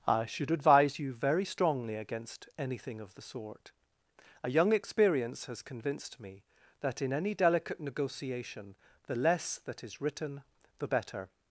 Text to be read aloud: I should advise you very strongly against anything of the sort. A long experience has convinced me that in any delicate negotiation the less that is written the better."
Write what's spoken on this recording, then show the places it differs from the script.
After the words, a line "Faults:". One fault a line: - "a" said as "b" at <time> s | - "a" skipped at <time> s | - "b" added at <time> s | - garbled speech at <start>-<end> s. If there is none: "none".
I should advise you very strongly against anything of the sort. A young experience has convinced me that in any delicate negotiation the less that is written the better."
Faults:
- "long" said as "young" at 4.5 s